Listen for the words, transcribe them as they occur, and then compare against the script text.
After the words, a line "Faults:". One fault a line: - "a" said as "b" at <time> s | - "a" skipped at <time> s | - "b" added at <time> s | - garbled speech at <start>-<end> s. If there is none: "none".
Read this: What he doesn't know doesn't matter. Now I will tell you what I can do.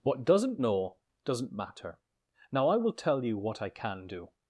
What doesn't know doesn't matter. Now I will tell you what I can do.
Faults:
- "he" skipped at 0.2 s